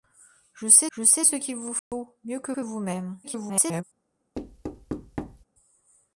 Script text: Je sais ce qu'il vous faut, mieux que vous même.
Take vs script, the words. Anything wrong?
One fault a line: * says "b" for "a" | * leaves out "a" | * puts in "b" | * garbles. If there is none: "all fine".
* puts in "je sais"
* puts in "que"
* garbles